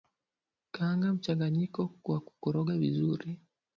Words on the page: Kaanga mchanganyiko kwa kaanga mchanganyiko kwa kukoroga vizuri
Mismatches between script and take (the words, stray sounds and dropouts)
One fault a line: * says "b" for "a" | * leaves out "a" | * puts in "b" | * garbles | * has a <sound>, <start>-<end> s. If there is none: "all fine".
* leaves out "kaanga mchanganyiko kwa"